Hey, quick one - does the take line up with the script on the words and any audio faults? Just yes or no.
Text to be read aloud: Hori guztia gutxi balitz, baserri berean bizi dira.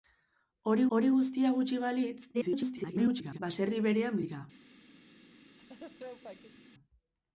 no